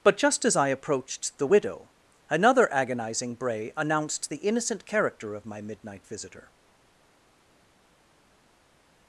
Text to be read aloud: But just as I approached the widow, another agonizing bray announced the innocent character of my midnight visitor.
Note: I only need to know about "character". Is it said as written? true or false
true